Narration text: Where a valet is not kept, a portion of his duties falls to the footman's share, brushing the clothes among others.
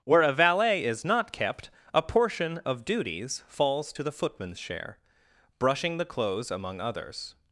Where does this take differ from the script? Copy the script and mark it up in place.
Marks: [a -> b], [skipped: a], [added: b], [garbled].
Where a valet is not kept, a portion of [skipped: his] duties falls to the footman's share, brushing the clothes among others.